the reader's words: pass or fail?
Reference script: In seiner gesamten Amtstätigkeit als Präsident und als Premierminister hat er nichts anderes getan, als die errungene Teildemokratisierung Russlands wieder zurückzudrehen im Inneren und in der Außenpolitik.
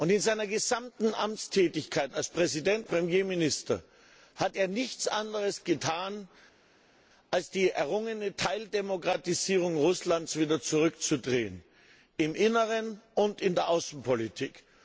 fail